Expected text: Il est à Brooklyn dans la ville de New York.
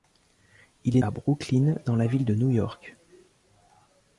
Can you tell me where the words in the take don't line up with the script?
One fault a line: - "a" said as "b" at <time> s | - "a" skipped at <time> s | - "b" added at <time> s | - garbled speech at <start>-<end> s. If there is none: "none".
none